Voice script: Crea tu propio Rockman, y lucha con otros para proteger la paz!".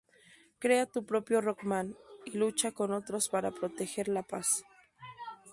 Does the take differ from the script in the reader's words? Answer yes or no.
no